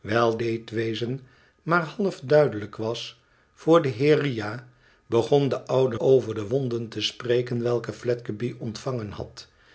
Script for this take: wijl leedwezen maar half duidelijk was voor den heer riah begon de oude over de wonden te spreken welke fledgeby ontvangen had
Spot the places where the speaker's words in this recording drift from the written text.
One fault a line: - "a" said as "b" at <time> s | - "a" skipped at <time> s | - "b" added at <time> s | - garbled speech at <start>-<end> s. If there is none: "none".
none